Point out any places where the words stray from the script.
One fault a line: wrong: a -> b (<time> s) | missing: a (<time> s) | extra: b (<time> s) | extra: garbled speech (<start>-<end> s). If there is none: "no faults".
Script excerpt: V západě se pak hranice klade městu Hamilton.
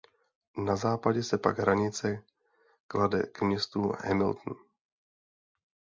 wrong: V -> Na (0.6 s)
extra: k (3.2 s)